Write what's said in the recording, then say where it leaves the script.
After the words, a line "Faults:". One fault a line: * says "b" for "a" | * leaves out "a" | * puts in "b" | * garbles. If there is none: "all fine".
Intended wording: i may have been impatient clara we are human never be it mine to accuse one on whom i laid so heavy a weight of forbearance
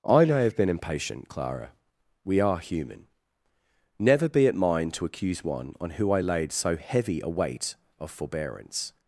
i may have been impatient clara we are human never be it mine to accuse one on who i laid so heavy a weight of forbearance
Faults:
* says "who" for "whom"